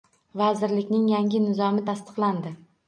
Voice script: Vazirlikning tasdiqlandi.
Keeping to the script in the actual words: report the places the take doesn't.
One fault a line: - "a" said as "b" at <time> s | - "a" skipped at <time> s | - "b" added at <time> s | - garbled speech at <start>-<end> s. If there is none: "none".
- "yangi Nizomi" added at 1.1 s